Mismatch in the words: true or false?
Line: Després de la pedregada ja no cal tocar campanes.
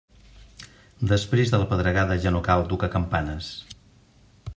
false